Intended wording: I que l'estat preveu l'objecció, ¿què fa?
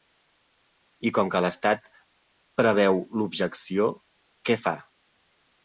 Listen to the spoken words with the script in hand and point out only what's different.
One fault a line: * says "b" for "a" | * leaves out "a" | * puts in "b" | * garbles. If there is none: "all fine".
* puts in "com"